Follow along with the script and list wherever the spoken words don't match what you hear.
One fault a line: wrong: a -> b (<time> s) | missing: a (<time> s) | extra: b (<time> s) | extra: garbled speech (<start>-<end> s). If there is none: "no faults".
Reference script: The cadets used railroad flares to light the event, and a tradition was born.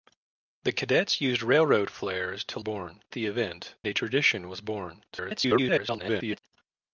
wrong: light -> born (2.6 s)
missing: and (3.8 s)
extra: garbled speech (5.1-6.4 s)